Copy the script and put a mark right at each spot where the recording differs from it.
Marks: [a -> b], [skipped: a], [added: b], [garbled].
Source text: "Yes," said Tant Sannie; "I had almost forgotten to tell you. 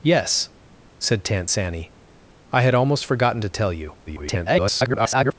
"Yes," said Tant Sannie; "I had almost forgotten to tell you. [garbled]